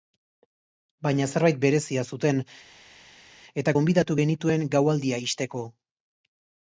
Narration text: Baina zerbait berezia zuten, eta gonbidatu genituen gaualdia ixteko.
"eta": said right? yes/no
yes